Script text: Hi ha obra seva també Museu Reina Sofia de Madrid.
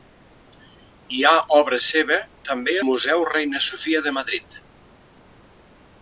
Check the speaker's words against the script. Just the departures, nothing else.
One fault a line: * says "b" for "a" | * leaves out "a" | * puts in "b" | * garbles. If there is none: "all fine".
all fine